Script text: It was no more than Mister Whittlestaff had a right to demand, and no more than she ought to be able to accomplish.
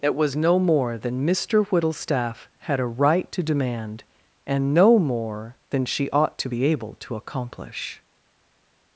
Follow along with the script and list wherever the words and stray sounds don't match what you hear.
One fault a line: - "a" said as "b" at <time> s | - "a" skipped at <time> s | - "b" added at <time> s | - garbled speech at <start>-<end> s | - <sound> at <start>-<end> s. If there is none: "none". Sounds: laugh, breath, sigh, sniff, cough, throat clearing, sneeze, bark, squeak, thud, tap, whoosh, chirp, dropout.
none